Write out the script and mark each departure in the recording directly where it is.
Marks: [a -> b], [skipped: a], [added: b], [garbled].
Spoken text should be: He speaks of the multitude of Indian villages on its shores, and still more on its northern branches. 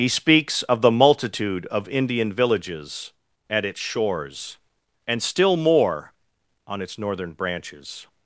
He speaks of the multitude of Indian villages [on -> at] its shores, and still more on its northern branches.